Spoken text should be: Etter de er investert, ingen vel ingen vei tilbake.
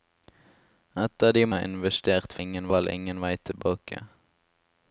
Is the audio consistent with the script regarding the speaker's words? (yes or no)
yes